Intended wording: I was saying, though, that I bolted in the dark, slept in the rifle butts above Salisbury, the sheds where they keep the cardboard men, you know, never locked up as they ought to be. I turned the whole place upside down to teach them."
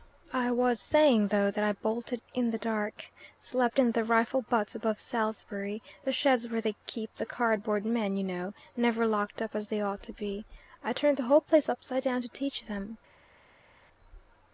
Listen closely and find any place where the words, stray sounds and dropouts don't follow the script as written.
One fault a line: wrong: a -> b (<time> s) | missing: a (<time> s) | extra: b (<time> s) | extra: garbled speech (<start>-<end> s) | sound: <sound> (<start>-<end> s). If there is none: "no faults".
no faults